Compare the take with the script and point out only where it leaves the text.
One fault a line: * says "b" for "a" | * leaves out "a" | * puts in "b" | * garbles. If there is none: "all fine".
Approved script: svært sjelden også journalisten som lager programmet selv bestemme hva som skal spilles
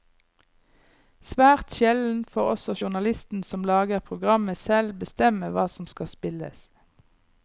* puts in "får"